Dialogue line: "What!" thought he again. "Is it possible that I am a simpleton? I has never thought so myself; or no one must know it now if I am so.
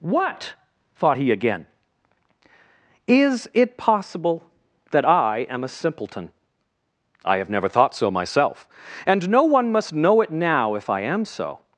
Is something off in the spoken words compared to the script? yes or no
yes